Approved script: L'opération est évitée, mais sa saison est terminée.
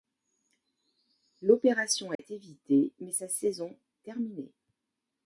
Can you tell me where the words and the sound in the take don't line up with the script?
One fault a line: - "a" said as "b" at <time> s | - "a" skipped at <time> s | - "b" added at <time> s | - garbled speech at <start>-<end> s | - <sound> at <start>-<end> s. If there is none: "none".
- dropout at 2.1-2.2 s
- "est" skipped at 3.8 s